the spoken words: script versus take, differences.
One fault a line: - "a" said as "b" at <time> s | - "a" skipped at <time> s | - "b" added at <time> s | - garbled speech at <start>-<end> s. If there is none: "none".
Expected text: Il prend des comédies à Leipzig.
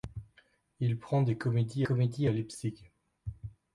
- "comédies" added at 1.8 s